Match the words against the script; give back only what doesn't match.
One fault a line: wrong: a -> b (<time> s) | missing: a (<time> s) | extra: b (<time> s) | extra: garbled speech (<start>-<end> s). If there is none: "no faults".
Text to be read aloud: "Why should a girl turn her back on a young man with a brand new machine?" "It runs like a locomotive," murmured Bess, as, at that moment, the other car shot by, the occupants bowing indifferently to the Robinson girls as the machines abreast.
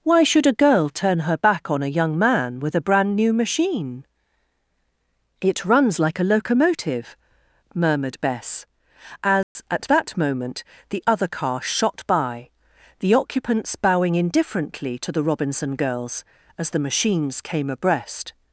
extra: came (17.4 s)